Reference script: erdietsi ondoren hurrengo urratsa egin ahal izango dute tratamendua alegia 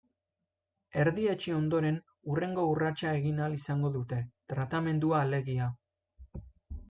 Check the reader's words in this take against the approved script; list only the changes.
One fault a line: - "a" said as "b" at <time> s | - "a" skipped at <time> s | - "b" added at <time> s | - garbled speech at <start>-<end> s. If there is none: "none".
none